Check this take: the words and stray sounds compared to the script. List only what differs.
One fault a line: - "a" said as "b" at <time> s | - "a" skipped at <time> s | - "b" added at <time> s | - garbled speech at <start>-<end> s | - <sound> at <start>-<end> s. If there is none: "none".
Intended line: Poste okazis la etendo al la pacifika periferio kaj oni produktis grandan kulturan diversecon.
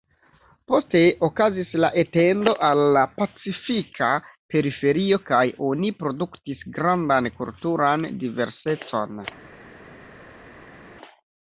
none